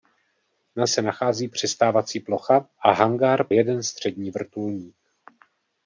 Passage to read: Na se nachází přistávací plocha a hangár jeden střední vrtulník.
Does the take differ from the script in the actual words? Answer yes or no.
no